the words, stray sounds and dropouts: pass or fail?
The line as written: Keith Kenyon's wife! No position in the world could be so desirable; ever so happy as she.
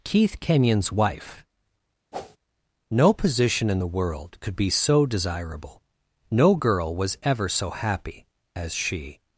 fail